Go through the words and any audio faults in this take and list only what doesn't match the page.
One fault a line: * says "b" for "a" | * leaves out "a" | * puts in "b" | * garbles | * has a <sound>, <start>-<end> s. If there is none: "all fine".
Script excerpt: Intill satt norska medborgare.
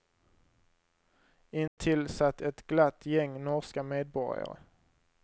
* has a dropout, 1.7-1.8 s
* puts in "ett glatt gäng"